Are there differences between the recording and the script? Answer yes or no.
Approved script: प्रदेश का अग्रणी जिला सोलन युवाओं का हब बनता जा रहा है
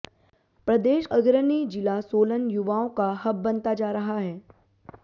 yes